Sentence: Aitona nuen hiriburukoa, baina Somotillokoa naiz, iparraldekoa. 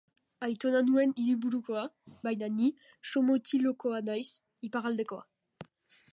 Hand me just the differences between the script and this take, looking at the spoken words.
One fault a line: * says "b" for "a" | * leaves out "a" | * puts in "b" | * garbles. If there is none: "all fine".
* puts in "ni"